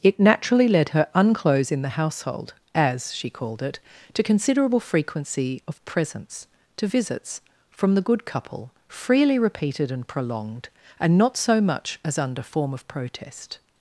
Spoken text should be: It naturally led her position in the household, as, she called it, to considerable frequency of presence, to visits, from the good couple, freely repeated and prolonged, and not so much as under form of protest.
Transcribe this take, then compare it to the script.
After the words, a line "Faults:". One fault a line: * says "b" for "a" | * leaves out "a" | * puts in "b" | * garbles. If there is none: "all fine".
It naturally led her unclose in the household, as, she called it, to considerable frequency of presence, to visits, from the good couple, freely repeated and prolonged, and not so much as under form of protest.
Faults:
* says "unclose" for "position"